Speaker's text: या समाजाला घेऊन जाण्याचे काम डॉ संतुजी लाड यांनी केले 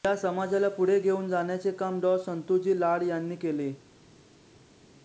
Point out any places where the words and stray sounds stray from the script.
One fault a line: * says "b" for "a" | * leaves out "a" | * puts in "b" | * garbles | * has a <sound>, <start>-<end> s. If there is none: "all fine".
* puts in "पुढे"